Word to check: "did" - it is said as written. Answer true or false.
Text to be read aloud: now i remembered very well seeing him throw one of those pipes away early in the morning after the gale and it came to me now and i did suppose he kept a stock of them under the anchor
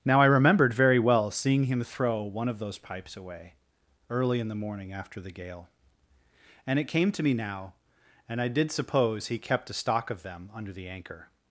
true